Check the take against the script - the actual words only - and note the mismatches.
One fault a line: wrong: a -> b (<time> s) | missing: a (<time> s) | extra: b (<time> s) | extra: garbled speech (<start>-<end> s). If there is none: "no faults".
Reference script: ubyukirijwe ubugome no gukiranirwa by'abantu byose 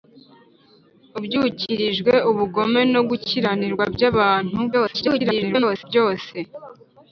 extra: garbled speech (4.7-5.8 s)